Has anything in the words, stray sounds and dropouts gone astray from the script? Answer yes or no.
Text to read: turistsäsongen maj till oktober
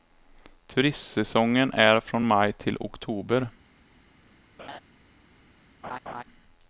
yes